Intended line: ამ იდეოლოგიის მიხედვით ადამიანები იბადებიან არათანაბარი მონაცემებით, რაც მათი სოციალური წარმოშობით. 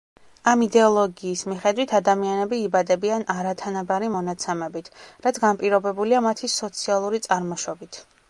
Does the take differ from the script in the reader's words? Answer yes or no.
yes